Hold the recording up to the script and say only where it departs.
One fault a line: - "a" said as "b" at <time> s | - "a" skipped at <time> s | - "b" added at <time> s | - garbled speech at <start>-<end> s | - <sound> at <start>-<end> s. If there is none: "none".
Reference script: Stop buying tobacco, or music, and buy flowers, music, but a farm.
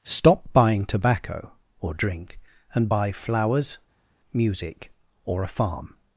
- "music" said as "drink" at 1.9 s
- "but" said as "or" at 5.2 s